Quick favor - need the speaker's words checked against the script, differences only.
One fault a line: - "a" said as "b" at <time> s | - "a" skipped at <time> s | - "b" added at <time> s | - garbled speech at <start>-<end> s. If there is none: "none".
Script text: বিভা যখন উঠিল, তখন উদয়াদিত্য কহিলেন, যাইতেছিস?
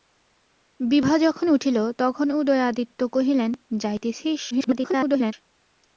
- garbled speech at 4.5-5.3 s